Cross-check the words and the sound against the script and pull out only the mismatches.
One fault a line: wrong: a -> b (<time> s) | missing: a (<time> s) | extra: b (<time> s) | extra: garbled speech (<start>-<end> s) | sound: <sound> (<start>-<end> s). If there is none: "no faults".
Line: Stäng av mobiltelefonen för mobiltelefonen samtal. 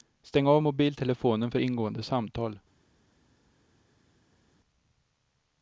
wrong: mobiltelefonen -> ingående (1.6 s)